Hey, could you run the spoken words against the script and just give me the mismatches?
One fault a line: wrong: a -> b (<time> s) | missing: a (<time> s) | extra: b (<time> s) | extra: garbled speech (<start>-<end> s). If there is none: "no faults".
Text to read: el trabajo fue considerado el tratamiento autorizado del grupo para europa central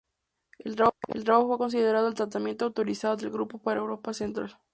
no faults